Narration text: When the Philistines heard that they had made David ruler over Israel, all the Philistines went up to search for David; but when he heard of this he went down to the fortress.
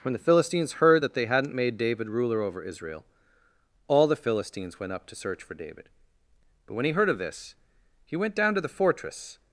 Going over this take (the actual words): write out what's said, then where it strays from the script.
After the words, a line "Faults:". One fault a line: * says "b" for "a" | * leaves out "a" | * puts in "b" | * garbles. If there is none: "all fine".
When the Philistines heard that they hadn't made David ruler over Israel, all the Philistines went up to search for David; but when he heard of this he went down to the fortress.
Faults:
* says "hadn't" for "had"